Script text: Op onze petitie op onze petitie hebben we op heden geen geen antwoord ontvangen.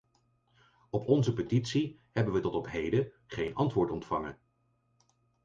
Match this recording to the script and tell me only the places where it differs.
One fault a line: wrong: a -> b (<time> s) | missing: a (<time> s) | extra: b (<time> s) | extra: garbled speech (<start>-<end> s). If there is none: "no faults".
missing: op onze petitie (2.0 s)
extra: tot (2.4 s)
missing: geen (3.5 s)